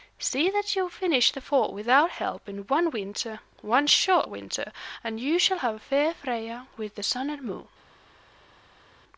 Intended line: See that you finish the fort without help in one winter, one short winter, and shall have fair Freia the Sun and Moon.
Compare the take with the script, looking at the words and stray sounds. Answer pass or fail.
fail